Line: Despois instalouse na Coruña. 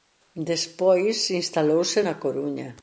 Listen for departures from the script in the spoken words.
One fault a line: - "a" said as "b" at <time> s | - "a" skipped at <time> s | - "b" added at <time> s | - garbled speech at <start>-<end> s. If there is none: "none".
none